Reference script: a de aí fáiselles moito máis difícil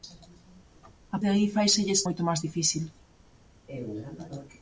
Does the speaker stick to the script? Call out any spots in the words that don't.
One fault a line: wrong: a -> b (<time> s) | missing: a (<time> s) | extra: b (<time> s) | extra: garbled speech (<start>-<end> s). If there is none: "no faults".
no faults